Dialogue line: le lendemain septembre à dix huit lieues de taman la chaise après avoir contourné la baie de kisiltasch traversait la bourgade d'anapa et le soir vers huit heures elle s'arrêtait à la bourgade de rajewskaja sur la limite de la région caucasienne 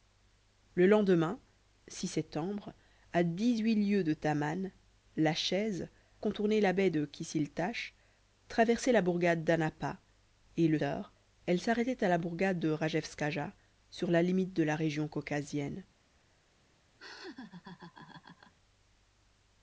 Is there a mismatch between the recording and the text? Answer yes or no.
yes